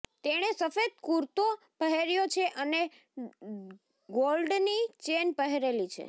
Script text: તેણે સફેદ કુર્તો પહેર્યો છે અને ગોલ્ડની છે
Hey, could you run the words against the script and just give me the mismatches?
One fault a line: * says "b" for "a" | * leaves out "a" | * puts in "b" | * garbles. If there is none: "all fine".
* puts in "ચેન પહેરેલી"